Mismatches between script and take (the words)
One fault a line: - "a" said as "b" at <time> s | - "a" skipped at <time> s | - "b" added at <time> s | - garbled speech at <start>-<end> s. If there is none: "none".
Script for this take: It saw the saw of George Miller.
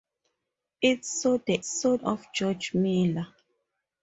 none